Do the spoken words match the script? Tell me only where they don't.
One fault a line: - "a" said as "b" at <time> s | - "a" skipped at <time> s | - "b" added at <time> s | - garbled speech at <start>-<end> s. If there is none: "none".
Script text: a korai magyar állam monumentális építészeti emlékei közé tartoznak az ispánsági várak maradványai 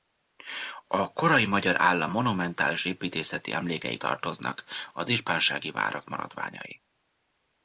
- "közé" skipped at 4.0 s